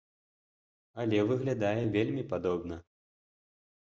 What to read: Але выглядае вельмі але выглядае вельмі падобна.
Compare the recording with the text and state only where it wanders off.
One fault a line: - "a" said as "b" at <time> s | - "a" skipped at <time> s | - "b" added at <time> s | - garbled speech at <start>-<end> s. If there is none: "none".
- "але выглядае вельмі" skipped at 2.2 s